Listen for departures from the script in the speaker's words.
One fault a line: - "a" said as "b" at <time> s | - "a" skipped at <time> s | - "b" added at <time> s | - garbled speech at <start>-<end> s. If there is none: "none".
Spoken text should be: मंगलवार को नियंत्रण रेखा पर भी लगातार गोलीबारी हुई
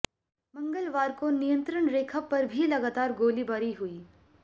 none